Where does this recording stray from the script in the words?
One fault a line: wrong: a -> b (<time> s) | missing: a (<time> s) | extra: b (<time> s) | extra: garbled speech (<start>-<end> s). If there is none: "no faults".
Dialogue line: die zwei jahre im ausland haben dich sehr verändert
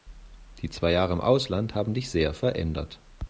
no faults